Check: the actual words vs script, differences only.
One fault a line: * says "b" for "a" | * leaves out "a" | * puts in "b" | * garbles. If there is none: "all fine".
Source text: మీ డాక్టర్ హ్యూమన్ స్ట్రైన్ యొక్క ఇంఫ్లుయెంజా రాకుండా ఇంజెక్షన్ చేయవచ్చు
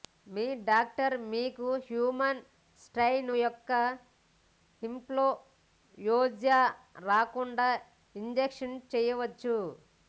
* puts in "మీకు"